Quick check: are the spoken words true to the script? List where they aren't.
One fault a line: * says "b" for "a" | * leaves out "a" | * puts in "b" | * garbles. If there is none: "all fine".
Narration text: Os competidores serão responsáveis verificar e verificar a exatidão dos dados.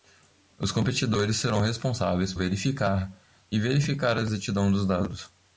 all fine